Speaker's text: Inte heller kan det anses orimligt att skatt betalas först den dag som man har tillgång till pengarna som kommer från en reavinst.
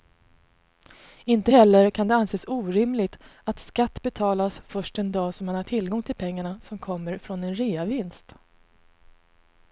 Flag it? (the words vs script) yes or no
no